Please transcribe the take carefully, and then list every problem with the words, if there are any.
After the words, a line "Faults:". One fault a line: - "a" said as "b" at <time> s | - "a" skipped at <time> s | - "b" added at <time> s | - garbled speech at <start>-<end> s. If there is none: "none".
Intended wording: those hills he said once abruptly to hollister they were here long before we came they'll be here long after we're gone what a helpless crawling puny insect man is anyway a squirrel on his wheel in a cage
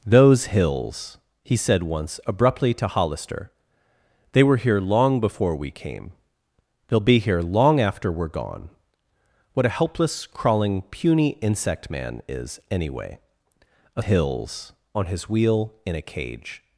those hills he said once abruptly to hollister they were here long before we came they'll be here long after we're gone what a helpless crawling puny insect man is anyway a hills on his wheel in a cage
Faults:
- "squirrel" said as "hills" at 14.0 s